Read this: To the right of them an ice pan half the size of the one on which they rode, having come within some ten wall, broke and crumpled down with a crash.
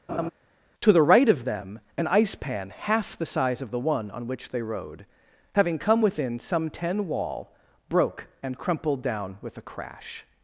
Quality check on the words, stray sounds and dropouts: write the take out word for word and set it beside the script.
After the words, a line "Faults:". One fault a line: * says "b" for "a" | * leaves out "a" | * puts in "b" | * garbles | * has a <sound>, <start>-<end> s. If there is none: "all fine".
To the right of them an ice pan half the size of the one on which they rode, having come within some ten wall, broke and crumpled down with a crash.
Faults:
* has a laugh, 0.1-0.3 s